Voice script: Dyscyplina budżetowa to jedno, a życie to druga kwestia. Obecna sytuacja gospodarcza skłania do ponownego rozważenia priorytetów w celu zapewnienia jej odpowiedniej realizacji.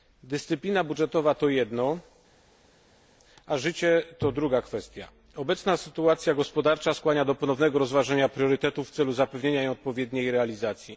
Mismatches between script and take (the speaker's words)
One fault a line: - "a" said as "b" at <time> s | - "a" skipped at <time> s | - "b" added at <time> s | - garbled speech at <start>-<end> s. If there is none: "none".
none